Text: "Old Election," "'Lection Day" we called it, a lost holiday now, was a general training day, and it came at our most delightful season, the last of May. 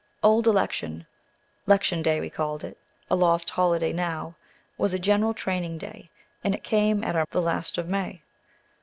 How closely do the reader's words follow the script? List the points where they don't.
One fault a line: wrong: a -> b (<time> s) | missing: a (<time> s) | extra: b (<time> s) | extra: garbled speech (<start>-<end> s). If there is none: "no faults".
missing: most delightful season (7.2 s)